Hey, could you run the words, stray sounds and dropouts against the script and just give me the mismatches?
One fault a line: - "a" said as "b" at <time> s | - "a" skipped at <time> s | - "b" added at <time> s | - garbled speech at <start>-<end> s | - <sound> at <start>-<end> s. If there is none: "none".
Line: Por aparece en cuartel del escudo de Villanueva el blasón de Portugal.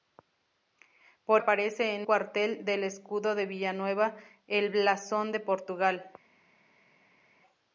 none